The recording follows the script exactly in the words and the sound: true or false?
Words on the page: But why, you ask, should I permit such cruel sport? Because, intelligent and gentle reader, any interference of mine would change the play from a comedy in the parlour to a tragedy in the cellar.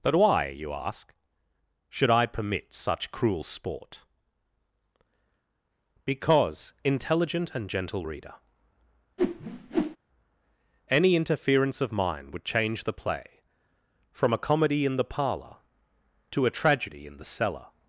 false